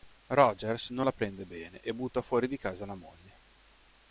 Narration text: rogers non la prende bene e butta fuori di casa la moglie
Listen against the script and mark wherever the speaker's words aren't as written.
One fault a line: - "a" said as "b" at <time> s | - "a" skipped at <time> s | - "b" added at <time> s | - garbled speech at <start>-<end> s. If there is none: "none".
none